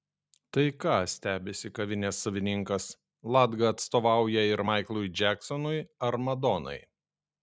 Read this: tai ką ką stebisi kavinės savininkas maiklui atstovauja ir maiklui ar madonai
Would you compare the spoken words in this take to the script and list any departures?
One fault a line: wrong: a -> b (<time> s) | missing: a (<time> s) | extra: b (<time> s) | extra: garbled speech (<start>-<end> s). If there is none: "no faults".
missing: ką (0.9 s)
wrong: maiklui -> latga (3.4 s)
extra: džeksonui (5.2 s)